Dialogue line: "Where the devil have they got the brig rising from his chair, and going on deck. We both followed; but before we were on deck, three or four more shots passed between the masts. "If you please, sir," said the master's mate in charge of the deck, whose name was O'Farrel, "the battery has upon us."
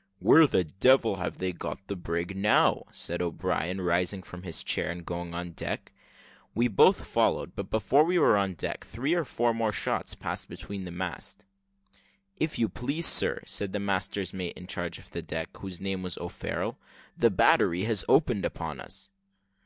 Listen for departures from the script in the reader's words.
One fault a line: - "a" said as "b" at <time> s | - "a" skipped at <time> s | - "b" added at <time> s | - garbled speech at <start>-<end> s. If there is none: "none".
- "now said O'Brien" added at 2.4 s
- "opened" added at 18.1 s